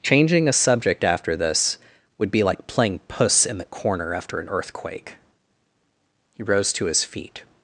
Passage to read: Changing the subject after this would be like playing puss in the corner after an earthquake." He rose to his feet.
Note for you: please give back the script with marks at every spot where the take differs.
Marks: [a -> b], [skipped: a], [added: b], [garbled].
Changing [the -> a] subject after this would be like playing puss in the corner after an earthquake." He rose to his feet.